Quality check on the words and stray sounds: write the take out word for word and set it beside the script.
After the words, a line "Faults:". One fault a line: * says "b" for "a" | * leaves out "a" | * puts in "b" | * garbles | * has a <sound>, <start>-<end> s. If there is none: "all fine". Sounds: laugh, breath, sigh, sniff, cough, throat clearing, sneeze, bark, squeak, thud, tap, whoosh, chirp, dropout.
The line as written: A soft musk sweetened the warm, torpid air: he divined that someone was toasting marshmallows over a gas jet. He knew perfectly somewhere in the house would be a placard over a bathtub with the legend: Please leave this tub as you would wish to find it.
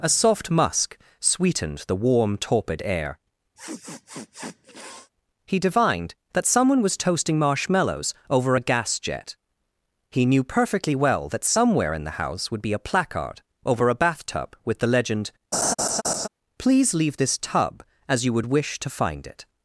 A soft musk sweetened the warm, torpid air: he divined that someone was toasting marshmallows over a gas jet. He knew perfectly well that somewhere in the house would be a placard over a bathtub with the legend: Please leave this tub as you would wish to find it.
Faults:
* has a sniff, 3.5-5.1 s
* puts in "well that"
* has a laugh, 15.5-16.3 s